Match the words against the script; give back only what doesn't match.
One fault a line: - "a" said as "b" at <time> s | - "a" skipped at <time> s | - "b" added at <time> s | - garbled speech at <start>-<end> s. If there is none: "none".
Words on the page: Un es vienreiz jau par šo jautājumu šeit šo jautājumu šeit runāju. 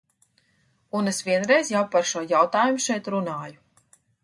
- "šo jautājumu šeit" skipped at 3.1 s